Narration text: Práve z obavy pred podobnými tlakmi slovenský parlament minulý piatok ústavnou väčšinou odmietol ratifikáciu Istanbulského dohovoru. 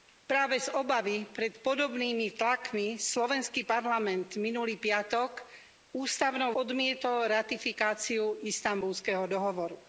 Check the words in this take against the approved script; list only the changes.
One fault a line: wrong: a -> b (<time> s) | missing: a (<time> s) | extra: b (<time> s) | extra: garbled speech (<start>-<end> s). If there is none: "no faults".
missing: väčšinou (6.5 s)